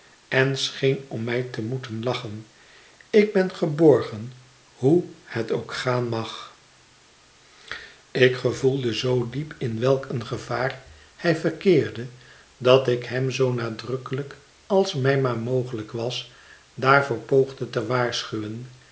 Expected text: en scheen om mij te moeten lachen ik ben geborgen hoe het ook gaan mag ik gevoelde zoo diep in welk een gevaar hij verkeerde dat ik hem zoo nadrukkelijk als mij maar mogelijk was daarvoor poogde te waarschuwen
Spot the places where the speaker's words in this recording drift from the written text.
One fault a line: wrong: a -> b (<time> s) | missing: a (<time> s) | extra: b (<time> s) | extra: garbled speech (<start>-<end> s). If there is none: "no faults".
no faults